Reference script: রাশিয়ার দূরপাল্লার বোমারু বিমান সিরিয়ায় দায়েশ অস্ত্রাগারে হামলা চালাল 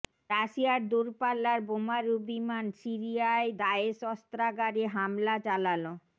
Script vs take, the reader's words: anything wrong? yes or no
no